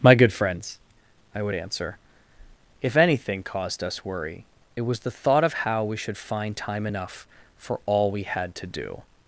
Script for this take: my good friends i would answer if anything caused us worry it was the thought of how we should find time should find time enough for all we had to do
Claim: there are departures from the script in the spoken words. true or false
true